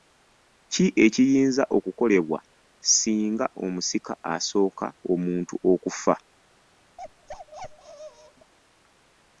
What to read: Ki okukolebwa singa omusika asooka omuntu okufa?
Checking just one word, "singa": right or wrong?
right